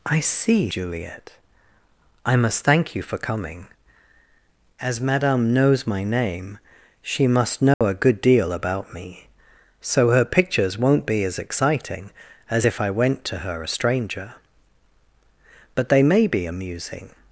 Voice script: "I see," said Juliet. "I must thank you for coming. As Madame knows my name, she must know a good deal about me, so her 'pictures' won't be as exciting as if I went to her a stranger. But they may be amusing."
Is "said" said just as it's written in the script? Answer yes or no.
no